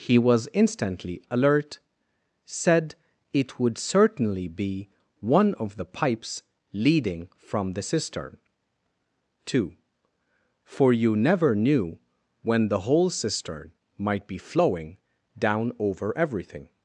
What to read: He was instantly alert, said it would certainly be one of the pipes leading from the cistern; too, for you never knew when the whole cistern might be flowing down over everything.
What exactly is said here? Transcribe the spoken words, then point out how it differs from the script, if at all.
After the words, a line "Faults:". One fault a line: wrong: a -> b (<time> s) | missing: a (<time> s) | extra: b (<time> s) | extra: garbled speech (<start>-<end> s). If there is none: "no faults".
He was instantly alert, said it would certainly be one of the pipes leading from the cistern; too, for you never knew when the whole cistern might be flowing down over everything.
Faults:
no faults